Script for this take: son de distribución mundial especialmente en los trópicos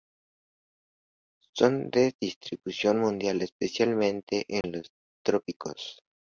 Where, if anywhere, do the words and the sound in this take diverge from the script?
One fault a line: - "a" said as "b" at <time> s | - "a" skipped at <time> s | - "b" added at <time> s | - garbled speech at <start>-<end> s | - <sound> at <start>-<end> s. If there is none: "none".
- dropout at 4.6-4.6 s